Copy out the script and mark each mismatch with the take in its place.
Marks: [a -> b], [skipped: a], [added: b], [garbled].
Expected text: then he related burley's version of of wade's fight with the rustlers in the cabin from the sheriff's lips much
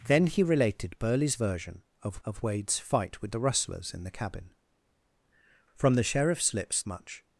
then he related burley's version of of wade's fight with the rustlers in the cabin from the sheriff's lips much